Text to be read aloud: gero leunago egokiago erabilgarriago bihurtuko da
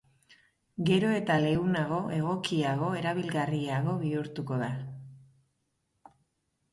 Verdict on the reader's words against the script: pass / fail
fail